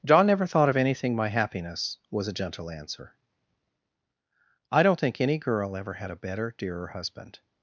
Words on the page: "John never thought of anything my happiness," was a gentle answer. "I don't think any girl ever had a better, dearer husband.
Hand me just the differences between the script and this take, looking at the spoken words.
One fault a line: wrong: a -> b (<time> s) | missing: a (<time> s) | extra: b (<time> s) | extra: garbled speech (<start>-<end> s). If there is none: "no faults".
no faults